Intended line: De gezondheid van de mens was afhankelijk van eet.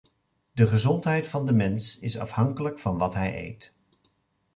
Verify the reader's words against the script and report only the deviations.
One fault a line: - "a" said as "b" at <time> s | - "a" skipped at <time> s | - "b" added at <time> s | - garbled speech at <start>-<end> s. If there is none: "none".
- "was" said as "is" at 2.0 s
- "wat hij" added at 3.0 s